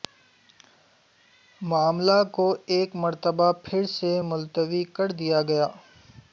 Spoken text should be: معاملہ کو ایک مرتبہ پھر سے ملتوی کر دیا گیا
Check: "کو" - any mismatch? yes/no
no